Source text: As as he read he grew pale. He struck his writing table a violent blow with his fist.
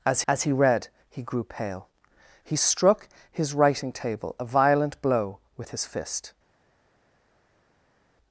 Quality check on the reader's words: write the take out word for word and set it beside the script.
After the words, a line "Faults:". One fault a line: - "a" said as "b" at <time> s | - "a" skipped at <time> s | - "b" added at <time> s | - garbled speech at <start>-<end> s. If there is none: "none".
As as he read he grew pale. He struck his writing table a violent blow with his fist.
Faults:
none